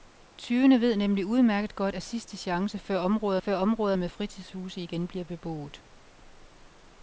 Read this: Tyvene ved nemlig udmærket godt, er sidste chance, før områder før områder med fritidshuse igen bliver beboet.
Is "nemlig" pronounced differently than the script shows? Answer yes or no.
no